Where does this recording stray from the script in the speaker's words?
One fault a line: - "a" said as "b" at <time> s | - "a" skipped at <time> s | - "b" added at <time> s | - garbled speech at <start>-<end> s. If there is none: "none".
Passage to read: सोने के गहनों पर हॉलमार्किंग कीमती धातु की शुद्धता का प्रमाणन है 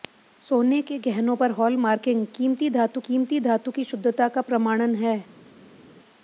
- "कीमती धातु" added at 3.0 s